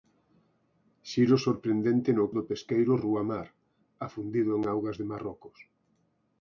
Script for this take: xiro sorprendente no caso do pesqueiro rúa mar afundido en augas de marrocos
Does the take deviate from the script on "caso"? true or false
true